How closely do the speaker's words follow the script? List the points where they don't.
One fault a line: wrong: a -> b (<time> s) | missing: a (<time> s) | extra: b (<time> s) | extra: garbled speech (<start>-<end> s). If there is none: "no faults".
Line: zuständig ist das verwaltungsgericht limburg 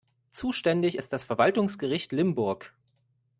no faults